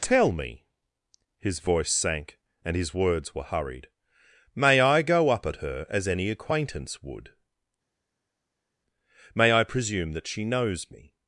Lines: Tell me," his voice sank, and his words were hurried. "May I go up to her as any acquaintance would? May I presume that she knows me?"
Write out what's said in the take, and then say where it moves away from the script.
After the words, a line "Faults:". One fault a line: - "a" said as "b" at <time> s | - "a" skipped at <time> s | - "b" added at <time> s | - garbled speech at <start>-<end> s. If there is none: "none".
Tell me," his voice sank, and his words were hurried. "May I go up at her as any acquaintance would? May I presume that she knows me?"
Faults:
- "to" said as "at" at 5.5 s